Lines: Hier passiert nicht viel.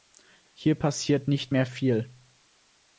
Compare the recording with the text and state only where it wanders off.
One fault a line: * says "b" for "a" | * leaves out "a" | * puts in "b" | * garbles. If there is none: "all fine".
* puts in "mehr"